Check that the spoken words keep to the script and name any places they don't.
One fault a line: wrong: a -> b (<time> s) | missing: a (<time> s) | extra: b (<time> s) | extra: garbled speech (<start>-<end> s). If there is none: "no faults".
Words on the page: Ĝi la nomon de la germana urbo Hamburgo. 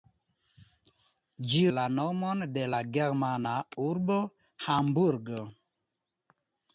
no faults